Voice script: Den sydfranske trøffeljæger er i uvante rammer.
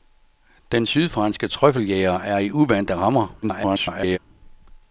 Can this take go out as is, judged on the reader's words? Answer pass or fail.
fail